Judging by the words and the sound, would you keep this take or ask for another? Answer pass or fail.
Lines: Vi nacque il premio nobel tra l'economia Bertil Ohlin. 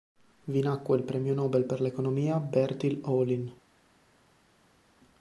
fail